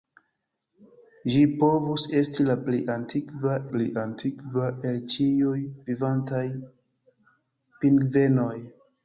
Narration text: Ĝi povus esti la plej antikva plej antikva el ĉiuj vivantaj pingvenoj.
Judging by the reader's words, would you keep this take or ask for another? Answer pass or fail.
pass